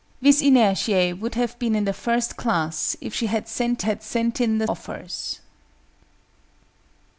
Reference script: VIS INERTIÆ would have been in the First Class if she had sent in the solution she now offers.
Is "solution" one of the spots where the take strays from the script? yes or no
yes